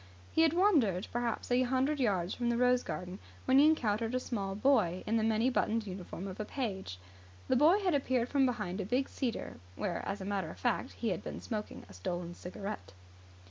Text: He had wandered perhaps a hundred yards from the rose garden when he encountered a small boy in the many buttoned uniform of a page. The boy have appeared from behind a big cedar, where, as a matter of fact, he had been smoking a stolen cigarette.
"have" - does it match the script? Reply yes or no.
no